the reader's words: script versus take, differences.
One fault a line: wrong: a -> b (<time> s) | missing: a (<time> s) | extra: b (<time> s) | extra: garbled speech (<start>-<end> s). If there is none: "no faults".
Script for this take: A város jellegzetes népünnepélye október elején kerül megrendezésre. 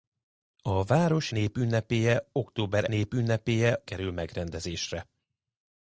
missing: jellegzetes (1.3 s)
wrong: elején -> népünnepélye (2.8 s)